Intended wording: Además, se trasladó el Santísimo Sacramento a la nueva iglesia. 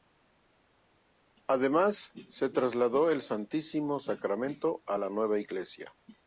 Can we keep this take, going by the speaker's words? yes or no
yes